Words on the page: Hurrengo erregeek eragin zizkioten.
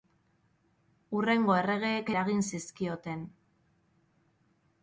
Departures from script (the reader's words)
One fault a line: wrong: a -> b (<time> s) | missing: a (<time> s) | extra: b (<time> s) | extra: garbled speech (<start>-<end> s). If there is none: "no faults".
no faults